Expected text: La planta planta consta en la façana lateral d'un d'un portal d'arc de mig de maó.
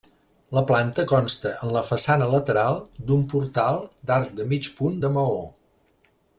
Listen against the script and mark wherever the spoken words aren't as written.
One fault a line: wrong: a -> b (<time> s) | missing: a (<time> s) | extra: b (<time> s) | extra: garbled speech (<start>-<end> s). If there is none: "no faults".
missing: planta (1.0 s)
missing: d'un (3.3 s)
extra: punt (4.8 s)